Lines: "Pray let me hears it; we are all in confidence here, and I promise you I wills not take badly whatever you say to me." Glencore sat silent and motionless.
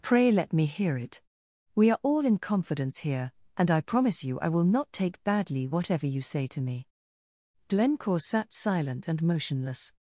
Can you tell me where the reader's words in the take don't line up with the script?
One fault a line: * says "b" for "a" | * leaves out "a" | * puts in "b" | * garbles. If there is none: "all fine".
* says "hear" for "hears"
* says "will" for "wills"